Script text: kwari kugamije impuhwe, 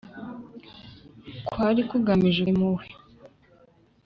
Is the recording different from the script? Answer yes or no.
no